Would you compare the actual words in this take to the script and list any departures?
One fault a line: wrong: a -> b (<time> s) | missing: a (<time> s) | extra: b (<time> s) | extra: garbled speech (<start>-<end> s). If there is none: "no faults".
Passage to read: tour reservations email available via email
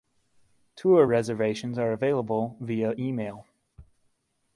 wrong: email -> are (1.8 s)